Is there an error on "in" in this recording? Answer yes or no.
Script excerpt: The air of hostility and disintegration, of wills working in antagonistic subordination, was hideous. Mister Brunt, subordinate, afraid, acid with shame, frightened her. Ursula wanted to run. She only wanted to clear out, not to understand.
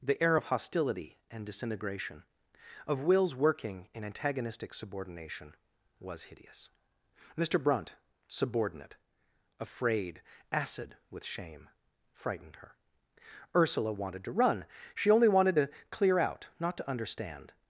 no